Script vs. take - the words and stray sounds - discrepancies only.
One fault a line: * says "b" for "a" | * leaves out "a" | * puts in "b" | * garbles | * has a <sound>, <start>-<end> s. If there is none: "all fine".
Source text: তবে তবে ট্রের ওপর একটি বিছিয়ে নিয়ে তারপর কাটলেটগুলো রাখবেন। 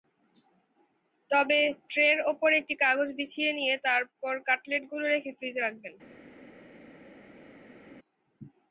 * leaves out "তবে"
* puts in "কাগজ"
* puts in "রেখে ফ্রিজে"